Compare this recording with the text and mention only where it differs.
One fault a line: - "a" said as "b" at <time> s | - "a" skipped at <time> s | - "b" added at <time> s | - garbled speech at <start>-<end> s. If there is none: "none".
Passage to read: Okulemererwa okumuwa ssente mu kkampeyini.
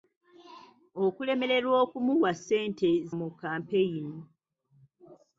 none